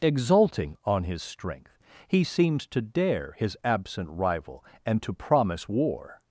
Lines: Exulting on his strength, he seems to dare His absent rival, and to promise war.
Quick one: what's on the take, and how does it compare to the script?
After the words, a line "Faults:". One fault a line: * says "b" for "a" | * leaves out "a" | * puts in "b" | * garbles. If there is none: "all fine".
Exulting on his strength, he seems to dare His absent rival, and to promise war.
Faults:
all fine